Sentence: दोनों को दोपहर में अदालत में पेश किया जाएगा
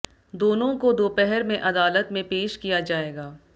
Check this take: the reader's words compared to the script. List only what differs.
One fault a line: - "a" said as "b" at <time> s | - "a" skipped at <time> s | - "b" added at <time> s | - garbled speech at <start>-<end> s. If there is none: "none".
none